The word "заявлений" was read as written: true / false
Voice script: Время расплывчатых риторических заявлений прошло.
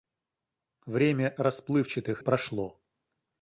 false